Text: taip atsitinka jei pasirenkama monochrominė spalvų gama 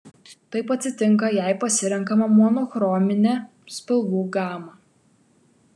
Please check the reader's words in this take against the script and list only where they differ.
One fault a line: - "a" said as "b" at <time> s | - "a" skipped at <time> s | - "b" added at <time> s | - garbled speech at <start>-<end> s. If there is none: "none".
none